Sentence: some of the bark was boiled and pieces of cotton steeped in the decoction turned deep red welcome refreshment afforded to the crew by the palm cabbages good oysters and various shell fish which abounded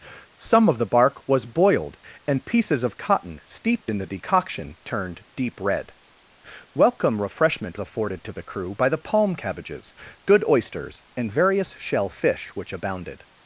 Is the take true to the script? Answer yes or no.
yes